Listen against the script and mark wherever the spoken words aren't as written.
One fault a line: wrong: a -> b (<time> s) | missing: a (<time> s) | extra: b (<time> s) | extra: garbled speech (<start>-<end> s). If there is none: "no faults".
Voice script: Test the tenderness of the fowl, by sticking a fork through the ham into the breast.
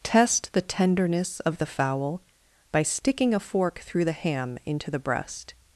no faults